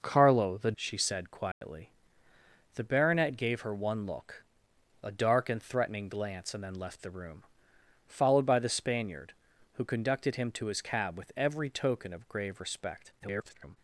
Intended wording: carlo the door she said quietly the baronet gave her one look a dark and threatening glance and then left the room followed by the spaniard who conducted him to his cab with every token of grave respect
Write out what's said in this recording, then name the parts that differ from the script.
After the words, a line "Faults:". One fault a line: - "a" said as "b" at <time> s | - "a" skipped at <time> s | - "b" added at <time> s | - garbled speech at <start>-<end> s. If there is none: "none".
carlo the she said quietly the baronet gave her one look a dark and threatening glance and then left the room followed by the spaniard who conducted him to his cab with every token of grave respect [garbled]
Faults:
- "door" skipped at 0.7 s
- garbled speech at 13.2-13.8 s